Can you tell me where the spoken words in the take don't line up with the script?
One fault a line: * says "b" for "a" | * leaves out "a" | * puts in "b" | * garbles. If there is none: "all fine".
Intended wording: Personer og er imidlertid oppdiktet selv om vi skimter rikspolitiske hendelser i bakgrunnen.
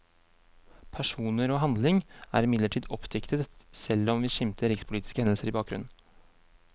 * puts in "handling"